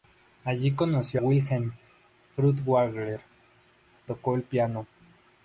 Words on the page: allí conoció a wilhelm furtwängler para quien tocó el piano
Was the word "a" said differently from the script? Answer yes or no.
yes